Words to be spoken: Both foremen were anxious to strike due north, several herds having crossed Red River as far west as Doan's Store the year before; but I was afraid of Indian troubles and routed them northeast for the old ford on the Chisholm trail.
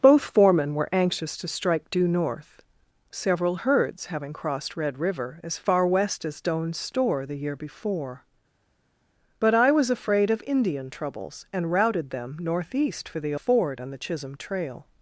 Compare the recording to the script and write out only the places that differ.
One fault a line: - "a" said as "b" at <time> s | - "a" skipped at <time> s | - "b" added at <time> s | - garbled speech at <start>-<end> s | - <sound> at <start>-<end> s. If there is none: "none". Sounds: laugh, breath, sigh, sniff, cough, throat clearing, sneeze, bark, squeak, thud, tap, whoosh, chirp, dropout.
- "old" skipped at 13.3 s